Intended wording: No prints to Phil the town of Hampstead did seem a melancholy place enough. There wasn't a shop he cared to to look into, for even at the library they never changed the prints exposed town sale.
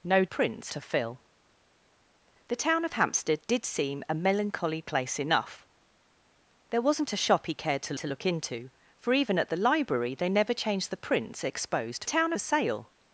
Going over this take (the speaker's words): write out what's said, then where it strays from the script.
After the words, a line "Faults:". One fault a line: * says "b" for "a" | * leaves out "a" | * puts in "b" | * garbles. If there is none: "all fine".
No prints to Phil the town of Hampstead did seem a melancholy place enough. There wasn't a shop he cared to to look into, for even at the library they never changed the prints exposed town sale.
Faults:
all fine